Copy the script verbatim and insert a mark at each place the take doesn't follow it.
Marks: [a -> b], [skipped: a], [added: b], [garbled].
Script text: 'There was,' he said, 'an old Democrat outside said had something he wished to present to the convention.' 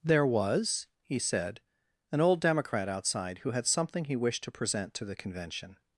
'There was,' he said, 'an old Democrat outside [said -> who] had something he wished to present to the convention.'